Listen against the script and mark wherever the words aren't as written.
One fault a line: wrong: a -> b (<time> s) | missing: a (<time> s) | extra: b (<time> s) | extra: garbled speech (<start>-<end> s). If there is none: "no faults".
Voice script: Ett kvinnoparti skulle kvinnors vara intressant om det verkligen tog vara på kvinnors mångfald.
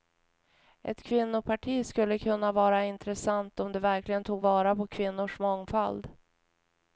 wrong: kvinnors -> kunna (2.2 s)